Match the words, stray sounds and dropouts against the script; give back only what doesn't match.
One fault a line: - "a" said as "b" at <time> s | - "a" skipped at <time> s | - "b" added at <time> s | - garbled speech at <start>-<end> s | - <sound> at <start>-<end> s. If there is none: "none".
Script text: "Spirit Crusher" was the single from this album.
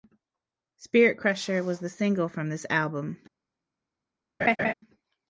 - laugh at 4.4-4.7 s